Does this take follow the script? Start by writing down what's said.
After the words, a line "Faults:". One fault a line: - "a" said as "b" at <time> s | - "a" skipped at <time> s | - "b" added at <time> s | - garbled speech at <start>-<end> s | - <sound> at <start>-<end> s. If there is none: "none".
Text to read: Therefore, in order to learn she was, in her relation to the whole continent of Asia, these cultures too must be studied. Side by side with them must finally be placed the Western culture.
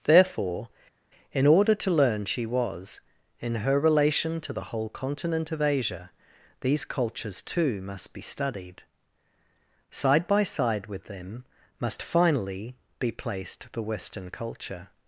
Therefore, in order to learn she was, in her relation to the whole continent of Asia, these cultures too must be studied. Side by side with them must finally be placed the Western culture.
Faults:
none